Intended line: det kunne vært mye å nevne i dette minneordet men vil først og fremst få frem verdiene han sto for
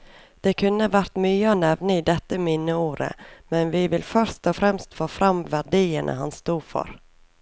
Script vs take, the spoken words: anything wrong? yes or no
yes